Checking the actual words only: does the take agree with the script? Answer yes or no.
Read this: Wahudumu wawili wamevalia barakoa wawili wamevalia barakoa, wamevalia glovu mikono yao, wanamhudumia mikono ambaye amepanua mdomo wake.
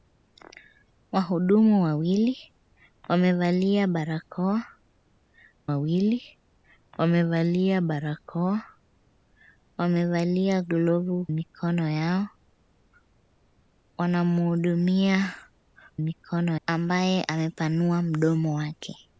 yes